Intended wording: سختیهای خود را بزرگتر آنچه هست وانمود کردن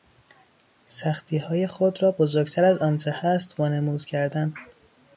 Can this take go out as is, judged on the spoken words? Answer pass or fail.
fail